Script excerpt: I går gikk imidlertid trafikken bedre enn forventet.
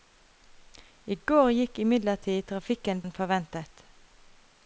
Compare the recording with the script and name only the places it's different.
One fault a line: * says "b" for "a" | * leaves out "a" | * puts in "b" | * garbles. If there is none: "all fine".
* leaves out "bedre"